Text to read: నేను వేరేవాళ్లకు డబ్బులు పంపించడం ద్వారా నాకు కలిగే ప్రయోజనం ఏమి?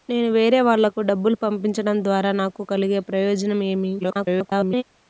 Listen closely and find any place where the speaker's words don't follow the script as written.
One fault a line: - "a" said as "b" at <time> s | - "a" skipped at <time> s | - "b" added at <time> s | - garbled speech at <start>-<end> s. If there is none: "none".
- garbled speech at 4.0-4.8 s